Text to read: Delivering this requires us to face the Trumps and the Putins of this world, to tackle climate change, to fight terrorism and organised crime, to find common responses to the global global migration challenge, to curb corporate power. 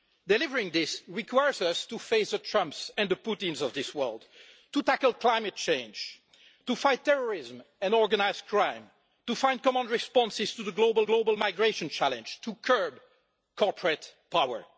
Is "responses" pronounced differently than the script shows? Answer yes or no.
no